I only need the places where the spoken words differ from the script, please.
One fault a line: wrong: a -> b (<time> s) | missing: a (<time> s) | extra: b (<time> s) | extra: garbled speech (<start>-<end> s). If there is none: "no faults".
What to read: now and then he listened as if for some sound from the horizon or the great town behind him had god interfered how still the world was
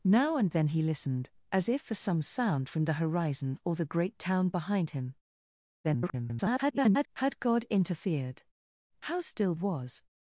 extra: garbled speech (5.8-7.1 s)
missing: the world (9.5 s)